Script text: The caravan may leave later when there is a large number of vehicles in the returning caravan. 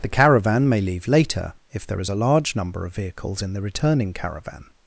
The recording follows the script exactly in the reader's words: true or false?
false